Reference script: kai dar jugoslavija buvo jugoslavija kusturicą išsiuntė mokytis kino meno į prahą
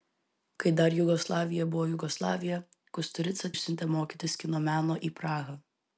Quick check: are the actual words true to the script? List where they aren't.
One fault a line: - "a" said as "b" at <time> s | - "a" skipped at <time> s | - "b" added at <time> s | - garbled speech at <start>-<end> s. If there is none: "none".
none